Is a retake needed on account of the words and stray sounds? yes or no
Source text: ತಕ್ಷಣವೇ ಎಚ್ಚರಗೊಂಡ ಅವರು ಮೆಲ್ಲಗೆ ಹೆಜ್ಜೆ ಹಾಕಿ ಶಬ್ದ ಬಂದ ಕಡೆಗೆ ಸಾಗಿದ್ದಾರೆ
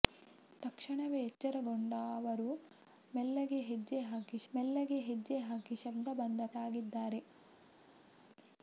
yes